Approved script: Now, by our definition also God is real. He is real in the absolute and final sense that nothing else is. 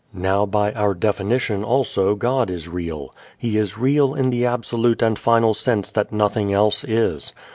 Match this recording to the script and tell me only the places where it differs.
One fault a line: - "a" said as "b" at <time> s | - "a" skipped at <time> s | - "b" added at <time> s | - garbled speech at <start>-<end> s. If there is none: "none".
none